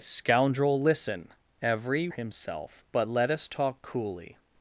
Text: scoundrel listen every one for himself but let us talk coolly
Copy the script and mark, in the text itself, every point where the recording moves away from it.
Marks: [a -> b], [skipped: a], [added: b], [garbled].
scoundrel listen every [skipped: one for] himself but let us talk coolly